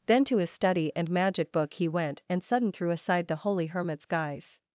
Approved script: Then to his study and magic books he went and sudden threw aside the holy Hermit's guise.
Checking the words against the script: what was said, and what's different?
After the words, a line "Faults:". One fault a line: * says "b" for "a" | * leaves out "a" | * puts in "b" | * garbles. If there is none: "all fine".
Then to his study and magic book he went and sudden threw aside the holy Hermit's guise.
Faults:
* says "book" for "books"